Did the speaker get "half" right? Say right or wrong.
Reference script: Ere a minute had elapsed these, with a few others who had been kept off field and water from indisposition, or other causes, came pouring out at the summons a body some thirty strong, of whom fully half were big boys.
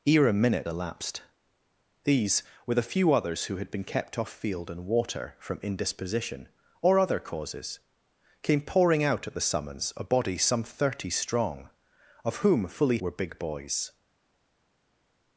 wrong